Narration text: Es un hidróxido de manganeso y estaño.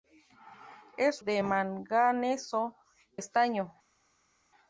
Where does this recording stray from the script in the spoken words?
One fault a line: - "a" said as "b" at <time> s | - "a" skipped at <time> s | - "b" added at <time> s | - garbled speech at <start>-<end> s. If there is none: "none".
- "un hidróxido" skipped at 1.2 s
- "y" skipped at 2.8 s